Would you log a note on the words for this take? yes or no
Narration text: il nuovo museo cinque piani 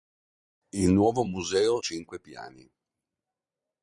no